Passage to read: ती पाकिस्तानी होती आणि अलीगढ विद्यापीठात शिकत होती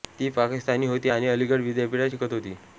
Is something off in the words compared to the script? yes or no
no